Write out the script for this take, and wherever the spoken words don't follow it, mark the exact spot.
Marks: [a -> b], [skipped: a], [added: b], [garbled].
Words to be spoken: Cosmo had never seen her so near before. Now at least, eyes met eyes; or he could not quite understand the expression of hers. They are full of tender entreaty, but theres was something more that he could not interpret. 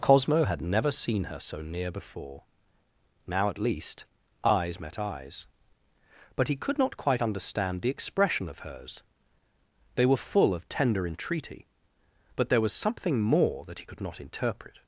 Cosmo had never seen her so near before. Now at least, eyes met eyes; [or -> but] he could not quite understand the expression of hers. They [are -> were] full of tender entreaty, but [theres -> there] was something more that he could not interpret.